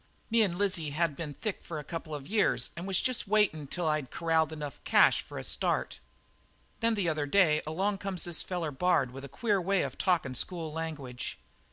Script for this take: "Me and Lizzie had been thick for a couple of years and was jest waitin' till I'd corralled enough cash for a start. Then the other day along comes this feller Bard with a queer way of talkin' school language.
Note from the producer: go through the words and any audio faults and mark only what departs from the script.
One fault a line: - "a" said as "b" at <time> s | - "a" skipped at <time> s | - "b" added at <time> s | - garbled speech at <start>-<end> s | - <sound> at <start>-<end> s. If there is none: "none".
none